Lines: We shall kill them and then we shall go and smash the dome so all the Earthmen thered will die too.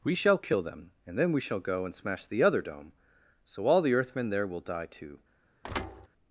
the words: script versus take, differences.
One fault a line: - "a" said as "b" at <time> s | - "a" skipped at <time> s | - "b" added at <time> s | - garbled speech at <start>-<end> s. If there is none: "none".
- "other" added at 2.4 s
- "thered" said as "there" at 4.3 s